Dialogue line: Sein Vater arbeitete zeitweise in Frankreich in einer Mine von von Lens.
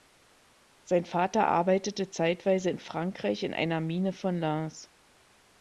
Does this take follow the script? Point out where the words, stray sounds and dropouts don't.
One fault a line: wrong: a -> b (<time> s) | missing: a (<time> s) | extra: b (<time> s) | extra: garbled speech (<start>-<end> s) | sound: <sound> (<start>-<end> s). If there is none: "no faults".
missing: von (4.4 s)